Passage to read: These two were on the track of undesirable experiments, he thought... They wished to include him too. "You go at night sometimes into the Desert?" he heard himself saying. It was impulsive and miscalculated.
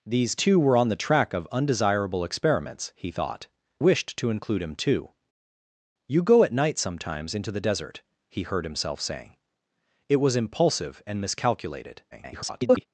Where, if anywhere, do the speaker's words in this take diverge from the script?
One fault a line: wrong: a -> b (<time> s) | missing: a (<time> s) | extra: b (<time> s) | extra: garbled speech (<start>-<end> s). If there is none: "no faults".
missing: They (3.5 s)
extra: garbled speech (12.1-12.9 s)